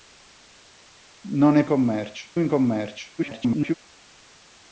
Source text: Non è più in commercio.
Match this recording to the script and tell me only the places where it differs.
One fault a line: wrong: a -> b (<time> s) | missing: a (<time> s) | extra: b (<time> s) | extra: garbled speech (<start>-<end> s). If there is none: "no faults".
wrong: più -> commercio (1.7 s)
extra: garbled speech (3.2-3.7 s)